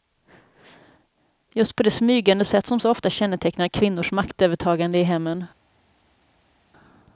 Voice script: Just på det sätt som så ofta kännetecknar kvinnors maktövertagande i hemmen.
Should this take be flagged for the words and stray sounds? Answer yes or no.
yes